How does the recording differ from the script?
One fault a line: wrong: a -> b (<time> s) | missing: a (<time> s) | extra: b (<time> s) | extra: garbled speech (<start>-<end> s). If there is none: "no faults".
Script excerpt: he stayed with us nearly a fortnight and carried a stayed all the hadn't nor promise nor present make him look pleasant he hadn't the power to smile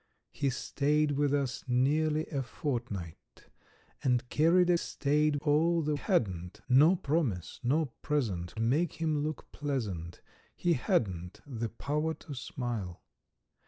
no faults